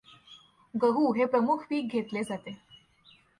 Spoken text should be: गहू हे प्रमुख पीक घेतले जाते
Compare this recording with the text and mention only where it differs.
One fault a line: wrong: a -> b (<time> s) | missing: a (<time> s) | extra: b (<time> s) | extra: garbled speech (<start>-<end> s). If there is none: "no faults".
no faults